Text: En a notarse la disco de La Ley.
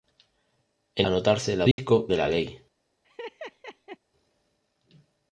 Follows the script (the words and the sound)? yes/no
no